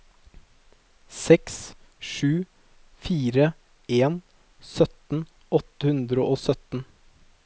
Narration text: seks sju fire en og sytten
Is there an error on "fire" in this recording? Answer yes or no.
no